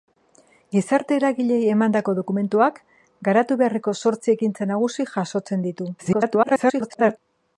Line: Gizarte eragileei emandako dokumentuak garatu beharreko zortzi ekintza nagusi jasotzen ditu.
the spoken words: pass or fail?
fail